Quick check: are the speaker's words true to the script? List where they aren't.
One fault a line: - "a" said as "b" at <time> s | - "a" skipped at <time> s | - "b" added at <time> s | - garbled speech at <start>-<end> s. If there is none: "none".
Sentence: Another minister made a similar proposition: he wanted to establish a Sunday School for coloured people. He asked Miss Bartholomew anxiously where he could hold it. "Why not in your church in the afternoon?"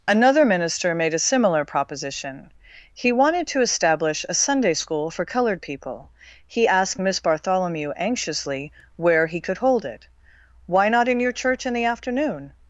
none